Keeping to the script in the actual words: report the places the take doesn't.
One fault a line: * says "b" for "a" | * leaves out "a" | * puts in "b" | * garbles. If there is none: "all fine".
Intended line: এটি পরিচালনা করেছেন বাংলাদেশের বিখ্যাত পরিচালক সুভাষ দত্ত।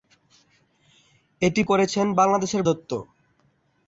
* leaves out "পরিচালনা"
* leaves out "বিখ্যাত পরিচালক সুভাষ"